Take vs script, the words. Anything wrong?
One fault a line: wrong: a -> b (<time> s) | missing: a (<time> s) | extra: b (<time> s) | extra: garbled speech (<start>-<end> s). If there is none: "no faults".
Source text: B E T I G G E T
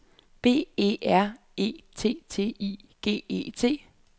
extra: R E (1.1 s)
extra: T (2.3 s)
missing: G (3.2 s)